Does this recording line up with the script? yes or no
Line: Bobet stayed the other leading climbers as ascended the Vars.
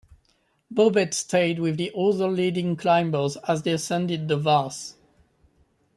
no